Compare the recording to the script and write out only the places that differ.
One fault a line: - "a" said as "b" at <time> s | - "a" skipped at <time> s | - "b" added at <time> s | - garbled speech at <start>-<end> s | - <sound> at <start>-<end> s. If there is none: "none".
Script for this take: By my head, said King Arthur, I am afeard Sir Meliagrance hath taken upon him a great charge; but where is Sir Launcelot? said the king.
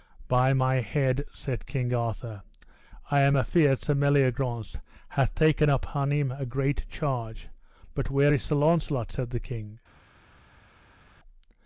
none